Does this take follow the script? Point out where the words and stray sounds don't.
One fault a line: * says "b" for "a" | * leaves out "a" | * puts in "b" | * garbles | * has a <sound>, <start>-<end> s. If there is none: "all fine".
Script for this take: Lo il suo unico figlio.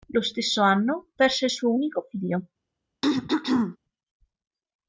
* puts in "stesso anno perse"
* has a throat clearing, 3.0-3.8 s